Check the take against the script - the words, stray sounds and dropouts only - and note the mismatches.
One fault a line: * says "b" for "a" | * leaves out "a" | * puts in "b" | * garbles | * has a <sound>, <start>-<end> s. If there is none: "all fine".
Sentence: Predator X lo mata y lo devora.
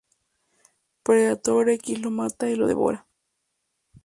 all fine